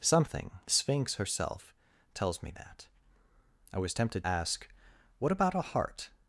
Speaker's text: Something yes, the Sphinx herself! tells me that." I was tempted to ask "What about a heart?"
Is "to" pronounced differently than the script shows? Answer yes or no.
yes